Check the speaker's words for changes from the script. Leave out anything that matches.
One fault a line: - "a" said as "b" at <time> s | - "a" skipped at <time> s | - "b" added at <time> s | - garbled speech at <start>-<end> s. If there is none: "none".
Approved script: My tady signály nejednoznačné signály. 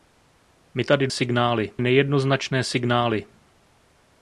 none